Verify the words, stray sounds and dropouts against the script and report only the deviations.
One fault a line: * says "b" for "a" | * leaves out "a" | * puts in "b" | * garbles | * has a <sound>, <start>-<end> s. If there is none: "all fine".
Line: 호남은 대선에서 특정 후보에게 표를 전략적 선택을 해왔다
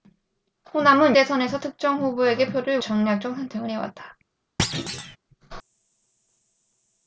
* has a thud, 4.6-5.2 s